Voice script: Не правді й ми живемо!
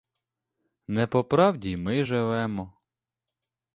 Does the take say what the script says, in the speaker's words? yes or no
no